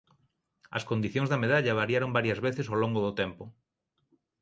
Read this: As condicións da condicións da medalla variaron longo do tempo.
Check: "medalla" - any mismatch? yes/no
yes